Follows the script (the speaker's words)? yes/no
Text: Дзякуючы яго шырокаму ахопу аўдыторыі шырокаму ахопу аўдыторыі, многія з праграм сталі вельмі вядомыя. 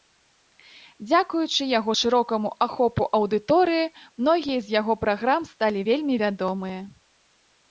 no